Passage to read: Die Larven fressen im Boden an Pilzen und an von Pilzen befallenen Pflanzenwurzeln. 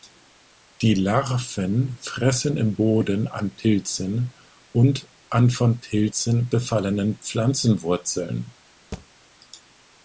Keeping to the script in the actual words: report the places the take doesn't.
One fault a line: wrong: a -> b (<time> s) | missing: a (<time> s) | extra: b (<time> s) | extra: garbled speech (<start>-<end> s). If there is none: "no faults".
no faults